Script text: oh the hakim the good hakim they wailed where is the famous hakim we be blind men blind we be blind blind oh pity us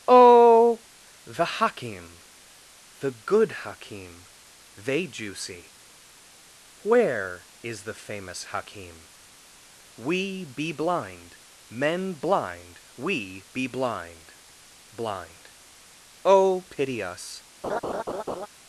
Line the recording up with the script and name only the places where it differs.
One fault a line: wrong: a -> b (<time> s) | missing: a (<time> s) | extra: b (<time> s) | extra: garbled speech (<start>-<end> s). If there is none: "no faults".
wrong: wailed -> juicy (5.0 s)